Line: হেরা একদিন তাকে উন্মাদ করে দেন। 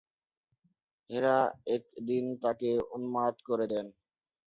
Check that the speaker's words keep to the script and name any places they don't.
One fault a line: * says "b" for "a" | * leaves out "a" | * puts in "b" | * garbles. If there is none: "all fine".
all fine